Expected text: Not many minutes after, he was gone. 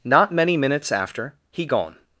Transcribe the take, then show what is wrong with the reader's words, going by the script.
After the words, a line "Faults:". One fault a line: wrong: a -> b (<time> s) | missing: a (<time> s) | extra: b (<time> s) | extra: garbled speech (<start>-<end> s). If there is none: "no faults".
Not many minutes after, he gone.
Faults:
missing: was (1.6 s)